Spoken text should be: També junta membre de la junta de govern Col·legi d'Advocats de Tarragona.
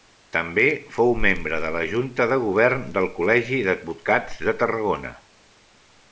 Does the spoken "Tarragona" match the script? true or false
true